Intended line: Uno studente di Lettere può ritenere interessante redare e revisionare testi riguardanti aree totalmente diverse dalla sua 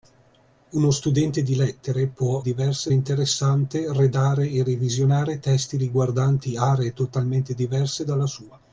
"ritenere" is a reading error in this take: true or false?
true